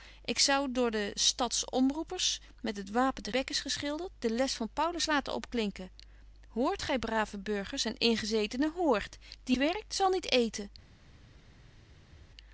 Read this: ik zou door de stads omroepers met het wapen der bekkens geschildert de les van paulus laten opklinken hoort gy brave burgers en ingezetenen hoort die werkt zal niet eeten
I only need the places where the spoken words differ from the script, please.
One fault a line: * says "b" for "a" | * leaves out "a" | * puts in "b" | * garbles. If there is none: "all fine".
all fine